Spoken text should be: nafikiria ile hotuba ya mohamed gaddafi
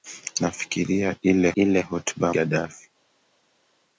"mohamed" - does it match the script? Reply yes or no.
no